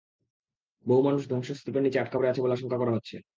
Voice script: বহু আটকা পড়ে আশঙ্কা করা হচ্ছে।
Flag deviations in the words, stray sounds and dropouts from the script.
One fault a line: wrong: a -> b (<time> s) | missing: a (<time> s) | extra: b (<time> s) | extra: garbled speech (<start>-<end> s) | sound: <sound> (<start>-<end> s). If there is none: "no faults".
extra: মানুষ ধ্বংসস্তূপের নিচে (1.0 s)
extra: আছে বলে (2.3 s)